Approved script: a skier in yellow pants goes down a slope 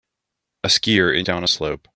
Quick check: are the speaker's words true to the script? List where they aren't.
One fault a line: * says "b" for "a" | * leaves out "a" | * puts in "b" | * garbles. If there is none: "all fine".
* leaves out "yellow pants goes"